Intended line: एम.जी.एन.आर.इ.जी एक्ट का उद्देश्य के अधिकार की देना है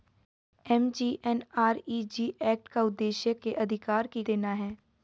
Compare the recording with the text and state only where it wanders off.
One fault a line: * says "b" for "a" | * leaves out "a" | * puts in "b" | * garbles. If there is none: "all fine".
all fine